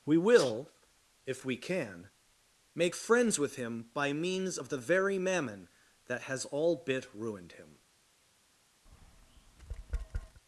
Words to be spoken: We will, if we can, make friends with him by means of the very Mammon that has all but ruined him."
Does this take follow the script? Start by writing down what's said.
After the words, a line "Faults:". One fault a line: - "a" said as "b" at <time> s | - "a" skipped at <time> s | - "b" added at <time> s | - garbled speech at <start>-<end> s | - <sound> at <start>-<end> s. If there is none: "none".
We will, if we can, make friends with him by means of the very Mammon that has all bit ruined him."
Faults:
- "but" said as "bit" at 6.8 s
- tap at 8.9-10.4 s